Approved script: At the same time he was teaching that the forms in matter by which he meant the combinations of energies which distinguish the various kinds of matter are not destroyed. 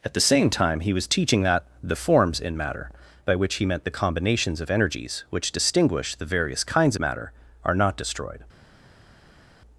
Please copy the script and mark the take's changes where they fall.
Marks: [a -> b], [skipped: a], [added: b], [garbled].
At the same time he was teaching that the forms in matter by which he meant the combinations of energies which distinguish the various kinds [skipped: of] matter are not destroyed.